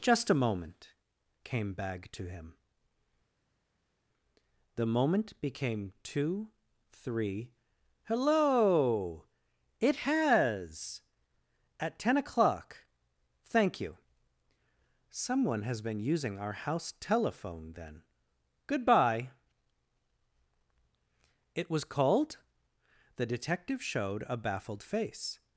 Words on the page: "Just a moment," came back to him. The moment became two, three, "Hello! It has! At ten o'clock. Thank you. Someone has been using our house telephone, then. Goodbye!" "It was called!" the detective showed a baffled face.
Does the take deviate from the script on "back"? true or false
true